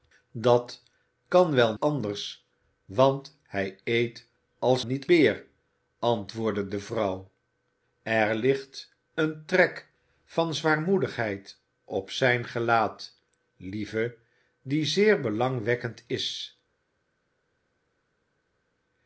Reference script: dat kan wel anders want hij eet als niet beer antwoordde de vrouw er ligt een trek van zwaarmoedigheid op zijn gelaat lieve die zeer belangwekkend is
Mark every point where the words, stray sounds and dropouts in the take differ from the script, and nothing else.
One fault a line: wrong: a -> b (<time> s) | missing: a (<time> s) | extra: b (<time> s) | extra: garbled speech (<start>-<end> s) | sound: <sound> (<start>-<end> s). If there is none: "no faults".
no faults